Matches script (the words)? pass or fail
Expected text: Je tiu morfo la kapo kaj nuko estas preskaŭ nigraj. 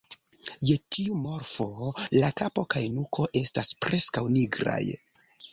pass